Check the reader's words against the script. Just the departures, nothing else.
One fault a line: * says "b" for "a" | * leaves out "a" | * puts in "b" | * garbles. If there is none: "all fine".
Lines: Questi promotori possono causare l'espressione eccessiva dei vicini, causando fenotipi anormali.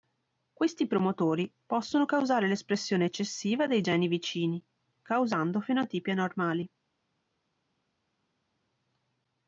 * puts in "geni"